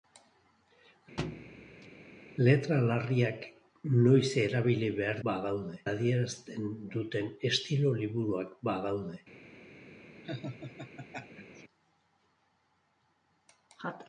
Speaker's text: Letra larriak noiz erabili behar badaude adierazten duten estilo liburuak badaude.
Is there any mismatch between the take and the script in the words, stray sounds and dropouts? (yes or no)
yes